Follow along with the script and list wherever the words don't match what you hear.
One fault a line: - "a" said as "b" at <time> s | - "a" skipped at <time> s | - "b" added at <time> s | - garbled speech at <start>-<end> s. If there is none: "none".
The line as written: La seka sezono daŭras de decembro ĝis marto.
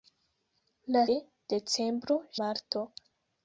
- "seka sezono daŭras" skipped at 1.0 s
- "ĝis" skipped at 2.2 s